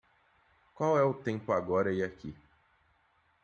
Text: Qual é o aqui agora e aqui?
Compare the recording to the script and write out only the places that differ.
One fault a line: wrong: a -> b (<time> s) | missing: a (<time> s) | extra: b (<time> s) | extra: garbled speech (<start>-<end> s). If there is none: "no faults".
wrong: aqui -> tempo (1.1 s)